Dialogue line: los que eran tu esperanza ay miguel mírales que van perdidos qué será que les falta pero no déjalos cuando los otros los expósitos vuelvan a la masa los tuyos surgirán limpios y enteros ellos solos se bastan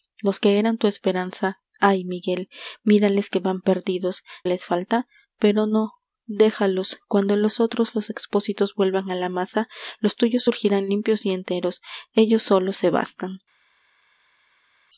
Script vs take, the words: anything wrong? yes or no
yes